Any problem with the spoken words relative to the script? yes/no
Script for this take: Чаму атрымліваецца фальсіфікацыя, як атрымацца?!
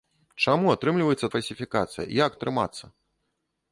no